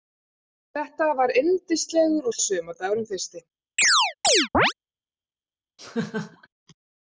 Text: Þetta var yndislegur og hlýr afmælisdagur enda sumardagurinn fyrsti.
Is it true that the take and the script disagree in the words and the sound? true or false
true